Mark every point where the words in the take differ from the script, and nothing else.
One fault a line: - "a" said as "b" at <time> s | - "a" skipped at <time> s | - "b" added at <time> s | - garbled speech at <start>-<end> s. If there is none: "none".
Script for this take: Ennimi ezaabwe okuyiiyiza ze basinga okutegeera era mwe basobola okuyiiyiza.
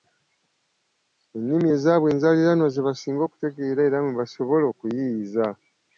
- "okuyiiyiza" said as "enzaaliranwa" at 2.1 s